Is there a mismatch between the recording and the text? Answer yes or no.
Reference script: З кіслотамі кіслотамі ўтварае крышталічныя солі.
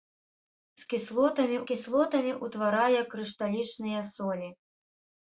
no